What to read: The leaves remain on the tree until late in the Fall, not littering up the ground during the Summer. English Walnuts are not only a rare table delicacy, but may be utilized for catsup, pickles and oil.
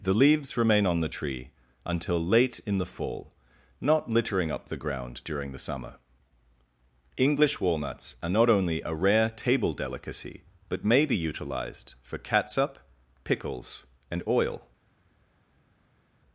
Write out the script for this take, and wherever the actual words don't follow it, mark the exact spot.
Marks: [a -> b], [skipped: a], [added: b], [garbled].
The leaves remain on the tree until late in the Fall, not littering up the ground during the Summer. English Walnuts are not only a rare table delicacy, but may be utilized for catsup, pickles and oil.